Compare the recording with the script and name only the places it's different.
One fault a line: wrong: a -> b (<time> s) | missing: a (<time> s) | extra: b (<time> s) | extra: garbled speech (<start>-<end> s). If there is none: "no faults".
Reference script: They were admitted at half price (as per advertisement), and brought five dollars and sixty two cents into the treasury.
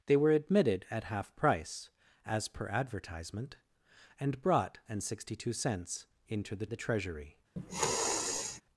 missing: five dollars (4.8 s)
extra: the (6.7 s)